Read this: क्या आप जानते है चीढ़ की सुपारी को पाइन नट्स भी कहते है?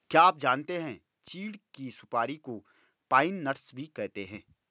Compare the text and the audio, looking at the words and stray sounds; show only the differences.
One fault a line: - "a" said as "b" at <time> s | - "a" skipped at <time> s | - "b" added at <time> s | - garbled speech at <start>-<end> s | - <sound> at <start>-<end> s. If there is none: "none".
none